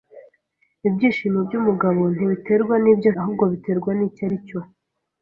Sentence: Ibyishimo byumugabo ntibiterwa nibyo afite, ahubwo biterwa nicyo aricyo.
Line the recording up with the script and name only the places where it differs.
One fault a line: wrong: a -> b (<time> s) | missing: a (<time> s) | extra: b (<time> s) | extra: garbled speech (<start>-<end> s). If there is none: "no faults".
missing: afite (3.1 s)